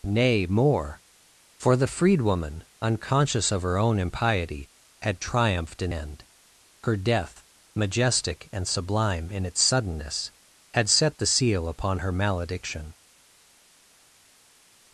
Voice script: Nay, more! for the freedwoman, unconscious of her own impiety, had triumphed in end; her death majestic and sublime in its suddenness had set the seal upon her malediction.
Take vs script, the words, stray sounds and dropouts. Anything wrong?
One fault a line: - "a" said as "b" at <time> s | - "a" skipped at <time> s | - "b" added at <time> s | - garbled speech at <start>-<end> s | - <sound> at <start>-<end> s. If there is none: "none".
none